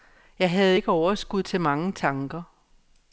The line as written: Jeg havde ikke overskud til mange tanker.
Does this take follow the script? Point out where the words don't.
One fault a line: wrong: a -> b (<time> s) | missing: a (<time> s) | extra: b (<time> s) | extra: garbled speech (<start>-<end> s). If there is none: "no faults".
no faults